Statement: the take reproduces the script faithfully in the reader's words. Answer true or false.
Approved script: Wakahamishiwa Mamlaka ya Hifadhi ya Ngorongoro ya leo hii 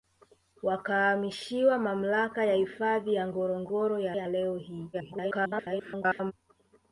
false